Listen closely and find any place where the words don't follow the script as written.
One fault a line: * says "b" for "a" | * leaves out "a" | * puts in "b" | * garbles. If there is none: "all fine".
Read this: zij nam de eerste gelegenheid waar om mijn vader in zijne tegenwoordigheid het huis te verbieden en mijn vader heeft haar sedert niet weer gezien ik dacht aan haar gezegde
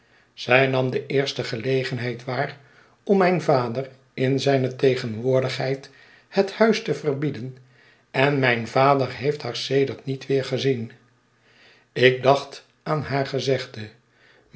all fine